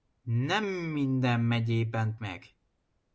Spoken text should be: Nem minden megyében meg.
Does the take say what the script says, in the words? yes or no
yes